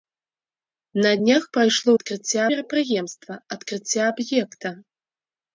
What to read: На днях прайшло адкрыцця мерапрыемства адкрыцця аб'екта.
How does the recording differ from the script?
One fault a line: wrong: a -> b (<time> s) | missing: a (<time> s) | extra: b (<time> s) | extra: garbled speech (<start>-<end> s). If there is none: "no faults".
no faults